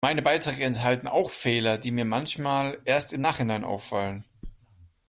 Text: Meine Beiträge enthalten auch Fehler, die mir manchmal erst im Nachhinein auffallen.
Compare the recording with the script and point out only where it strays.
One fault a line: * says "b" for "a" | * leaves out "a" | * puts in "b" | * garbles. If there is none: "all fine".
all fine